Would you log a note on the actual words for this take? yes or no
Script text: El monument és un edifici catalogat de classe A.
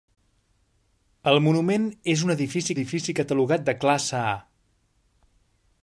yes